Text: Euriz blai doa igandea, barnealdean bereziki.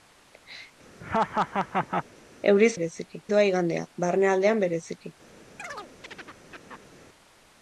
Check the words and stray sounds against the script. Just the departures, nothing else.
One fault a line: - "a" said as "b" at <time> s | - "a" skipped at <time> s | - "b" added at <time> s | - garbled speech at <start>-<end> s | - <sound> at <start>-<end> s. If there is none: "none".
- laugh at 1.0-2.1 s
- "blai" said as "bereziki" at 2.7 s
- chirp at 5.6-7.0 s